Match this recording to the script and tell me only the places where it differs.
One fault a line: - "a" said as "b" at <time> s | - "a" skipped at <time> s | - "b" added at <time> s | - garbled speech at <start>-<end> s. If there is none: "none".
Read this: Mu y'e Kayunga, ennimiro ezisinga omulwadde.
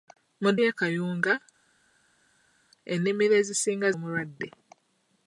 none